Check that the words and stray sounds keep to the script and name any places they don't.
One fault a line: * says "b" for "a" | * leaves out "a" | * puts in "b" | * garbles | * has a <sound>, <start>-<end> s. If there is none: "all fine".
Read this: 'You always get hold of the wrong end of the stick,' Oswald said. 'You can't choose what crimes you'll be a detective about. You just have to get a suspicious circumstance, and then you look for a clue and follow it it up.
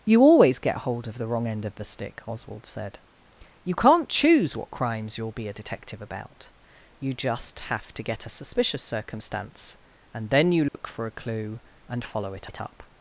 * has a dropout, 10.7-10.7 s